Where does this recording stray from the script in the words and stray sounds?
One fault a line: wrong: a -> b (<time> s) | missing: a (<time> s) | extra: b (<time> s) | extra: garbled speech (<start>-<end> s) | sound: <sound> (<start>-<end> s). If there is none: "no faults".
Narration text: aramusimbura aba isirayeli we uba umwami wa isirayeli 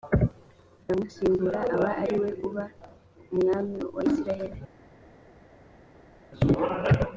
wrong: isirayeli -> ari (2.0 s)